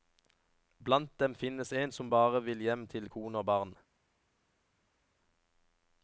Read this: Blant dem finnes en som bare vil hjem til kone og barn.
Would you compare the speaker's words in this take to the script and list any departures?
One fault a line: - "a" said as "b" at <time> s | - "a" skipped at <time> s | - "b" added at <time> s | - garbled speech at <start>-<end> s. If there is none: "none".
none